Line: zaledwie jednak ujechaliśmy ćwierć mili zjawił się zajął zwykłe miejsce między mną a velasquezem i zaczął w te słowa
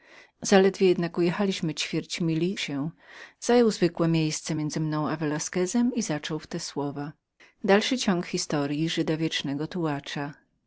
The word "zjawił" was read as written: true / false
false